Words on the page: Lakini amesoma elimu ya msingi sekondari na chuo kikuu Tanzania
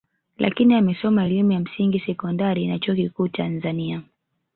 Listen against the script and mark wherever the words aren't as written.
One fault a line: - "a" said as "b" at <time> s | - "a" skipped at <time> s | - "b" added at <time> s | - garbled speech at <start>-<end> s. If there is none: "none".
none